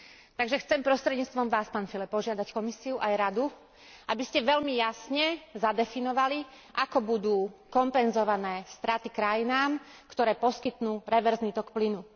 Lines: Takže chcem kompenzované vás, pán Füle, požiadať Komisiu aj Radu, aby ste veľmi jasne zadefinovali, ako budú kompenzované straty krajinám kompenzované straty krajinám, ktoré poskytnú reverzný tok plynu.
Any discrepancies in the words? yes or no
yes